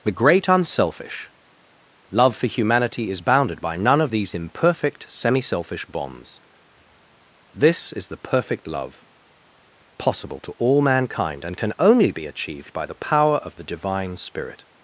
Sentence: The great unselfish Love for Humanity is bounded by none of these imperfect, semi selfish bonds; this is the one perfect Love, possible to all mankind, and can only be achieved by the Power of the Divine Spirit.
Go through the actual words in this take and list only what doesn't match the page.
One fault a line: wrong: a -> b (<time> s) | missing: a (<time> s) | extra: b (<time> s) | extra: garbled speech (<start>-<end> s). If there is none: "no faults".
missing: one (8.2 s)